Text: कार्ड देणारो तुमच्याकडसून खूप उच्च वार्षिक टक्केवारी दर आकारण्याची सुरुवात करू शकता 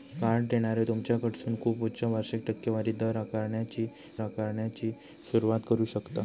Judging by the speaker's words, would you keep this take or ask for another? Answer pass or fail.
fail